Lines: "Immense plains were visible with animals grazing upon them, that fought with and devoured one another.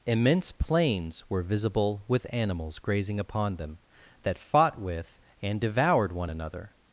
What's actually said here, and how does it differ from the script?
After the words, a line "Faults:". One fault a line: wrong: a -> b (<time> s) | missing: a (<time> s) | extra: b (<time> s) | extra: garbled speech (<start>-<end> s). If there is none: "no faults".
"Immense plains were visible with animals grazing upon them, that fought with and devoured one another.
Faults:
no faults